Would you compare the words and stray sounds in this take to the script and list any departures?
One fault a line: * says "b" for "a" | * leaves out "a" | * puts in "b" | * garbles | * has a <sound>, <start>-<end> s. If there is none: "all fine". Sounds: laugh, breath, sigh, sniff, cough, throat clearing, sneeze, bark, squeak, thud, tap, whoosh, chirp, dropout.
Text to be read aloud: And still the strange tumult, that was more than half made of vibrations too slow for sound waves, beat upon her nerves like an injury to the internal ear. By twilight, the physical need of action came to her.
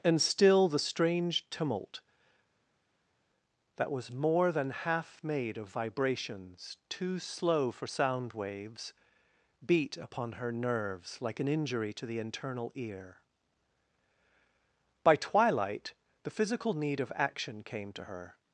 all fine